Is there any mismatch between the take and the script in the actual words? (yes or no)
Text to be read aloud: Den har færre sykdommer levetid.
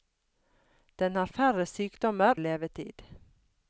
no